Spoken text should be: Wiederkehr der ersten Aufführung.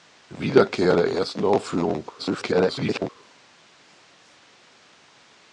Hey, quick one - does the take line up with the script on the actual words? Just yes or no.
no